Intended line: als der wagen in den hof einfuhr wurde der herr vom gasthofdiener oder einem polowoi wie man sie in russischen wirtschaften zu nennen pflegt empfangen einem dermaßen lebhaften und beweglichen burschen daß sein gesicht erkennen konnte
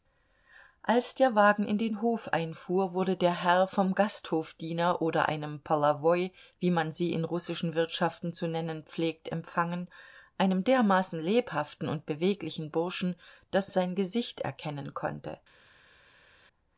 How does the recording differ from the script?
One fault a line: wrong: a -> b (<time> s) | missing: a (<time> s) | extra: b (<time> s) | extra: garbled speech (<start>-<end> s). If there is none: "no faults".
no faults